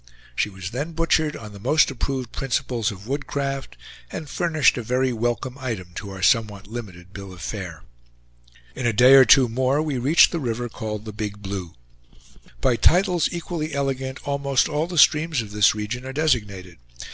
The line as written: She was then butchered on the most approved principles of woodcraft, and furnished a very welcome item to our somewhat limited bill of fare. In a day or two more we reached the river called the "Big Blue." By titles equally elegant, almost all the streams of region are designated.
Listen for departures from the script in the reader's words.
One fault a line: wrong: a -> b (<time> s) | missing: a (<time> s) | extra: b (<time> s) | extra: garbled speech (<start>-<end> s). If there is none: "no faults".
extra: this (15.5 s)